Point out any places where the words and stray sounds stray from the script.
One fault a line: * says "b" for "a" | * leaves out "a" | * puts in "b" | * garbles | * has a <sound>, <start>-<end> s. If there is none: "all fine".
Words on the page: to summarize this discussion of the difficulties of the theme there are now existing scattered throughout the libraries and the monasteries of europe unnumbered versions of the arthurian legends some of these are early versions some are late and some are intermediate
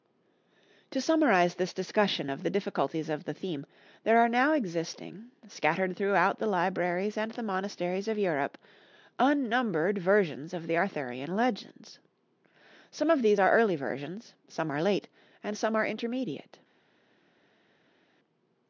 all fine